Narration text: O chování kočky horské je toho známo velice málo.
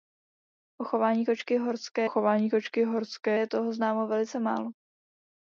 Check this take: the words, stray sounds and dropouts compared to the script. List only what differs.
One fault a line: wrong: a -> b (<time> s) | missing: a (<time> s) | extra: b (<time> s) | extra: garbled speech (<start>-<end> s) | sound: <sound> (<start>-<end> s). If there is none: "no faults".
extra: chování kočky horské (2.1 s)